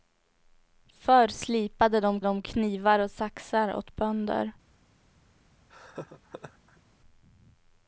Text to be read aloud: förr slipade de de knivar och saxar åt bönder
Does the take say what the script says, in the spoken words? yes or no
yes